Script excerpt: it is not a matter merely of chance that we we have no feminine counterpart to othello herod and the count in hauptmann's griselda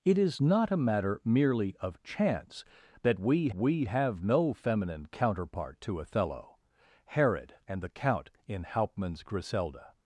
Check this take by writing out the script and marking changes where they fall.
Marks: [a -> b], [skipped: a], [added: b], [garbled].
it is not a matter merely of chance that we we have no feminine counterpart to othello herod and the count in hauptmann's griselda